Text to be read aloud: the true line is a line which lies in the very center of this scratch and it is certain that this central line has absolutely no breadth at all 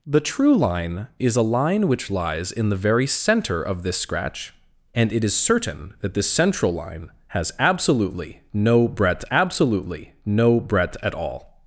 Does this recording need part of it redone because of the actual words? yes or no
yes